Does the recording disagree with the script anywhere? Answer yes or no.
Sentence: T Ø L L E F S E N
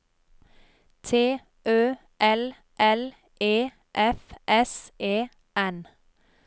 no